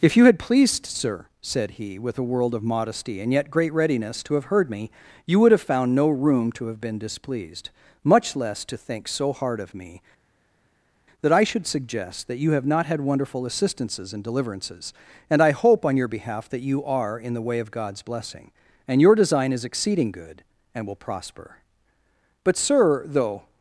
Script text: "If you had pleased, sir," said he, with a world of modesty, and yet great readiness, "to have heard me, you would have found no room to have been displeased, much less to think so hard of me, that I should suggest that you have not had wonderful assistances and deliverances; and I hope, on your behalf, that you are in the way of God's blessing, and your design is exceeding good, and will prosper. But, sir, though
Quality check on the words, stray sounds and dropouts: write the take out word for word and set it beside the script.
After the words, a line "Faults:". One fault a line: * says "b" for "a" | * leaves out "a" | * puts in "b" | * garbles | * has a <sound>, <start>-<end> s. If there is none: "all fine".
"If you had pleased, sir," said he, with a world of modesty, and yet great readiness, "to have heard me, you would have found no room to have been displeased, much less to think so hard of me, that I should suggest that you have not had wonderful assistances and deliverances; and I hope, on your behalf, that you are in the way of God's blessing, and your design is exceeding good, and will prosper. But, sir, though
Faults:
all fine